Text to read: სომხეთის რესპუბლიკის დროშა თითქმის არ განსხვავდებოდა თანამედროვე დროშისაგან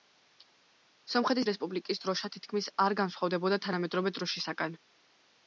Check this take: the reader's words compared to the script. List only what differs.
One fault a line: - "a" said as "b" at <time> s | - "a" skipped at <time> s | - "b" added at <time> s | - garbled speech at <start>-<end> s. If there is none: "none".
none